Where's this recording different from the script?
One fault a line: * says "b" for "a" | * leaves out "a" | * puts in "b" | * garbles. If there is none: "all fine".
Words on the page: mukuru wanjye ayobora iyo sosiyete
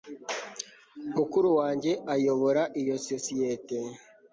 all fine